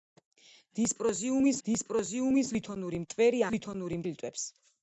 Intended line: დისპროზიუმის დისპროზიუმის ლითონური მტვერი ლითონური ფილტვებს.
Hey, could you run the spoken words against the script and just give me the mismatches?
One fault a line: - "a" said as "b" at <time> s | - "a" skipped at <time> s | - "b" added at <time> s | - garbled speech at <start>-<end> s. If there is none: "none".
none